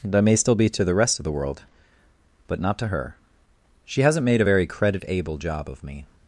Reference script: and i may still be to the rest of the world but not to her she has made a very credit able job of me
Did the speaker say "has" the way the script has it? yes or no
no